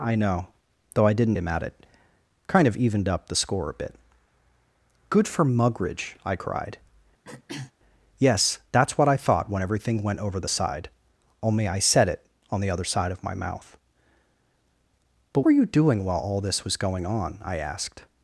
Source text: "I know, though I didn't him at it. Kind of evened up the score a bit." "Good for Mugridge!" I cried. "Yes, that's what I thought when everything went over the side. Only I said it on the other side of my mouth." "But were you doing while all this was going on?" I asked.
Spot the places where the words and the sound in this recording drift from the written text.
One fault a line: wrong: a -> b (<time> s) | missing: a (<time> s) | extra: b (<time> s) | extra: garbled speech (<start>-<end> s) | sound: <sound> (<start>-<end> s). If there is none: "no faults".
sound: throat clearing (7.2-7.7 s)